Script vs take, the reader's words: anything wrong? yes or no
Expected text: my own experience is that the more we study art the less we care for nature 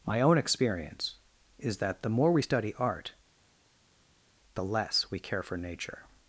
no